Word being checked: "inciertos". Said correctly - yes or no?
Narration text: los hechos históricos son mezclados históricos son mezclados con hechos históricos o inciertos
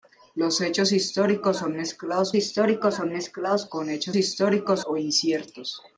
yes